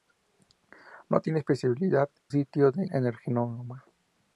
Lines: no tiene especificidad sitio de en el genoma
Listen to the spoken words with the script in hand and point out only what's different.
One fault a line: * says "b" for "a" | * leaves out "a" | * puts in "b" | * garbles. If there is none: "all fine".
all fine